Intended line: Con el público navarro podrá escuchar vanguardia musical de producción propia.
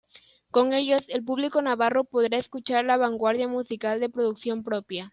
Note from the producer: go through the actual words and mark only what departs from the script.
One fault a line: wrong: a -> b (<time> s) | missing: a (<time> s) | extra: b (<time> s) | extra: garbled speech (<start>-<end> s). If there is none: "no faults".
extra: ellos (0.7 s)
extra: la (2.9 s)